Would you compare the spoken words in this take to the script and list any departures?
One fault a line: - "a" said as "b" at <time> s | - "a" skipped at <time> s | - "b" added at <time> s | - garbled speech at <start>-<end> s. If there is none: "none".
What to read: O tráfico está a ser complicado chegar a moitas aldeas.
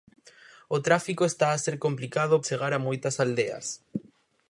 none